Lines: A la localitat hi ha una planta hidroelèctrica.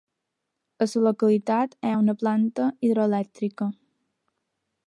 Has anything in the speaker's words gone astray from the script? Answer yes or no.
no